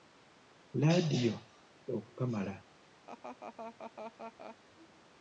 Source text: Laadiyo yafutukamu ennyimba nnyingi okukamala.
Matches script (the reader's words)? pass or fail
fail